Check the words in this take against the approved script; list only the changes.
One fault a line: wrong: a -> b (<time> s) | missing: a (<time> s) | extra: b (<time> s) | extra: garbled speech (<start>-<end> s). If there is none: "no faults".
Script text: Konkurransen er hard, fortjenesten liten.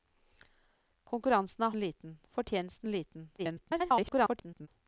wrong: hard -> liten (1.8 s)
extra: garbled speech (3.4-4.7 s)